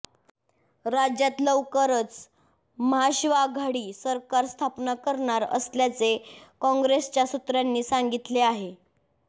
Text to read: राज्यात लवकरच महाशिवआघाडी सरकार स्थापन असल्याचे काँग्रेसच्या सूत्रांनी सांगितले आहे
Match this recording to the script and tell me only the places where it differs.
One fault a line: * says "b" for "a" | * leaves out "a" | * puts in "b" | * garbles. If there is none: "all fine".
* puts in "करणार"